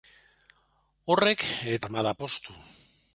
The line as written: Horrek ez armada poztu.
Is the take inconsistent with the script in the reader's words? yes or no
no